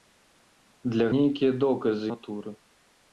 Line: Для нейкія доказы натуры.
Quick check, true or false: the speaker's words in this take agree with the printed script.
true